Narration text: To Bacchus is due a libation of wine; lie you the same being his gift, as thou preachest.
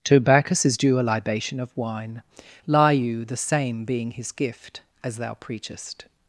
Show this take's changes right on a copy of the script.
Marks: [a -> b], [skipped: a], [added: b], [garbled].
To Bacchus is due a libation of wine; lie you the same being his gift, as thou preachest.